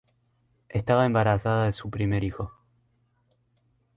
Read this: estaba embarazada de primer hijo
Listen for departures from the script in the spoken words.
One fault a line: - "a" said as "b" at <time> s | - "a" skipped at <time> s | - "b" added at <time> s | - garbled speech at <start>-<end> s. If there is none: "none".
- "su" added at 1.7 s